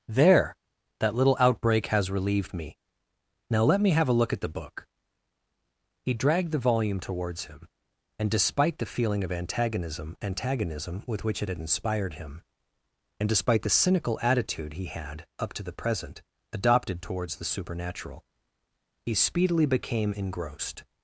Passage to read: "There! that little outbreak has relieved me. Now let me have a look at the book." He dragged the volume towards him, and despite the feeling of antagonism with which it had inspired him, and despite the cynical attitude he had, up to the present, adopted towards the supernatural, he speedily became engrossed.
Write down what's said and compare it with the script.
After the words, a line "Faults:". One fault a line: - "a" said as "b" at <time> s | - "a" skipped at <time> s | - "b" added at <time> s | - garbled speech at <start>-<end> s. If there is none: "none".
"There! that little outbreak has relieved me. Now let me have a look at the book." He dragged the volume towards him, and despite the feeling of antagonism antagonism with which it had inspired him, and despite the cynical attitude he had, up to the present, adopted towards the supernatural, he speedily became engrossed.
Faults:
- "antagonism" added at 10.2 s